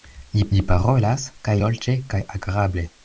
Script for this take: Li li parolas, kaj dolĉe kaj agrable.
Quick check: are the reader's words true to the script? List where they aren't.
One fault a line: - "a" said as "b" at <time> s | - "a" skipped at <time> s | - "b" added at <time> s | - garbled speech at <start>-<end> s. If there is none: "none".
none